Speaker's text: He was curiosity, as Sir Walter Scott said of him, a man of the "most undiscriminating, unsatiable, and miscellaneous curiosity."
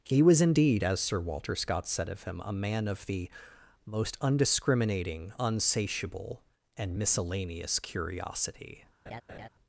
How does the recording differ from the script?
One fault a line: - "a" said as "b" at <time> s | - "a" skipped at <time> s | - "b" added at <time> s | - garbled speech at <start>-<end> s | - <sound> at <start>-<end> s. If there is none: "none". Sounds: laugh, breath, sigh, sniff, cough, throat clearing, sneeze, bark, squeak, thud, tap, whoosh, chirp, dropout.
- "curiosity" said as "indeed" at 0.4 s
- laugh at 9.1-9.5 s